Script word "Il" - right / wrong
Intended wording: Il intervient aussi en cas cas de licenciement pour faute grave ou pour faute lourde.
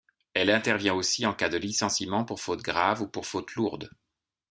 wrong